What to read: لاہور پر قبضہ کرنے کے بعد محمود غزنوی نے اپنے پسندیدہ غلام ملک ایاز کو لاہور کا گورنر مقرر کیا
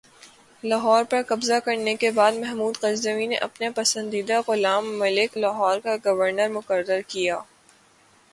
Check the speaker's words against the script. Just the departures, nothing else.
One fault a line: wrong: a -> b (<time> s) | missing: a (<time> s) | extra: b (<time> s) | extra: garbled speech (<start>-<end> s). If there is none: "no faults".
missing: ایاز کو (5.3 s)